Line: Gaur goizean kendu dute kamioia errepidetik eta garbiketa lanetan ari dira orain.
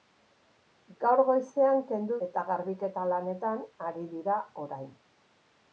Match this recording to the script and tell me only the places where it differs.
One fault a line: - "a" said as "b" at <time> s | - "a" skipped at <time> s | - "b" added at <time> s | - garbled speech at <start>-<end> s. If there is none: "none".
- "dute kamioia errepidetik" skipped at 2.2 s